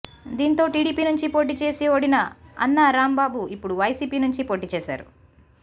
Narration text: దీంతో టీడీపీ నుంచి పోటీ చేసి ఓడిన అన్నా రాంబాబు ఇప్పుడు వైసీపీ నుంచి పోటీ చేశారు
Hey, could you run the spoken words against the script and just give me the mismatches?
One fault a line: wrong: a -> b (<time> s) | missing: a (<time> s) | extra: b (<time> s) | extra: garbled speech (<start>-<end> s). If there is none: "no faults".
no faults